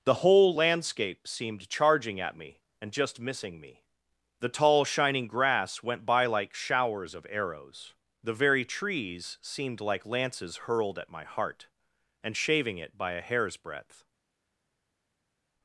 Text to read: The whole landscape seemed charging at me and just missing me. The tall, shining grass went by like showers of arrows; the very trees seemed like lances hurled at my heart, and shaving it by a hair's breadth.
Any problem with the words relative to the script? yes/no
no